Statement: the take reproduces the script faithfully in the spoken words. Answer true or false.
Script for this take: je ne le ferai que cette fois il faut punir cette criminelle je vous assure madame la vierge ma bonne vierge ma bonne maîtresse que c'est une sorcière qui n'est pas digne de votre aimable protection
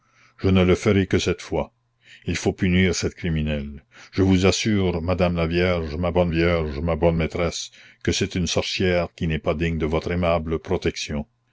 true